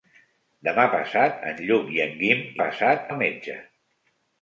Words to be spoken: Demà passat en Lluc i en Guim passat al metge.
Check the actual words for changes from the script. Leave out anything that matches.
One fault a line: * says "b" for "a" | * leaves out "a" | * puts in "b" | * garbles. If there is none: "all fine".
all fine